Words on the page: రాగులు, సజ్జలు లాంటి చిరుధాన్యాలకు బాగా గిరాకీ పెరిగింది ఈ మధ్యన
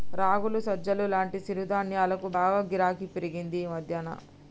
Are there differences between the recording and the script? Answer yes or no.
no